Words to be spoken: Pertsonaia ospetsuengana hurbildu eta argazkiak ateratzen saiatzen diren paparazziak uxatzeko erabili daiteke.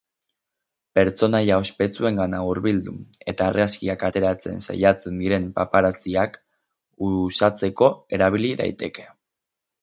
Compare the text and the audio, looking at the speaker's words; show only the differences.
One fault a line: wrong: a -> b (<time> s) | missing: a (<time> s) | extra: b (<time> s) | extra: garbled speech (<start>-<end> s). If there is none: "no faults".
no faults